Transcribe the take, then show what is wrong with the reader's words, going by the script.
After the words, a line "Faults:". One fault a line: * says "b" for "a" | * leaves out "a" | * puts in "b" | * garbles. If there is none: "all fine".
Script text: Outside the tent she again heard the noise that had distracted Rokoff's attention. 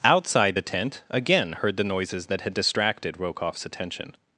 Outside the tent again heard the noises that had distracted Rokoff's attention.
Faults:
* leaves out "she"
* says "noises" for "noise"